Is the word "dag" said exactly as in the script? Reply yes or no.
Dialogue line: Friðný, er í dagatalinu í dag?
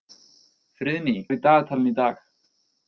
yes